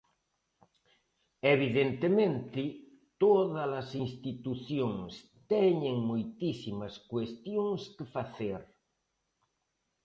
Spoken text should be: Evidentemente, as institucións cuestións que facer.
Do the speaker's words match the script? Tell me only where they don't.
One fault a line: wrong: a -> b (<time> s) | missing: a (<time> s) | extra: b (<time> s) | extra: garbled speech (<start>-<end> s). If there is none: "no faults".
extra: todas (3.2 s)
extra: teñen moitísimas (5.5 s)